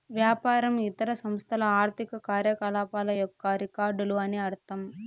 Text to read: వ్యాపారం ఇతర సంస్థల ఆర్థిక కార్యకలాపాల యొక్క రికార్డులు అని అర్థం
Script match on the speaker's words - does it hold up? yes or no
yes